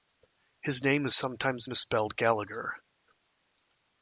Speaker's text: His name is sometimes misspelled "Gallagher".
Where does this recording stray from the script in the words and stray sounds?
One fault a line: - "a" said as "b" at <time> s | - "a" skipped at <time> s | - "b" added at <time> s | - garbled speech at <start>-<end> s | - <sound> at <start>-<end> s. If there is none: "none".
none